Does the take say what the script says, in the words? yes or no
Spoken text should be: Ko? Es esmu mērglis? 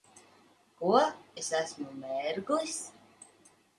yes